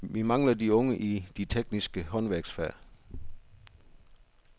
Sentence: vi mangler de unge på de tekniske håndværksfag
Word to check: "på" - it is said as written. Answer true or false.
false